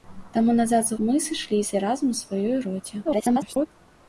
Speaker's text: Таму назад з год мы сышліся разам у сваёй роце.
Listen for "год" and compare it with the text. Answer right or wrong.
wrong